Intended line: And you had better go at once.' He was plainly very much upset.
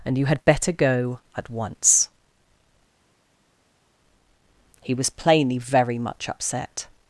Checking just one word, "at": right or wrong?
right